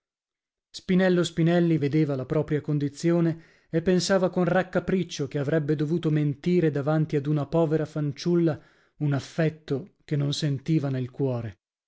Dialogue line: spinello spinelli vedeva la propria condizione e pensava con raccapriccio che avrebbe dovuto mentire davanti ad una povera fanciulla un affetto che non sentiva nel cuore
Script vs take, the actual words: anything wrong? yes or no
no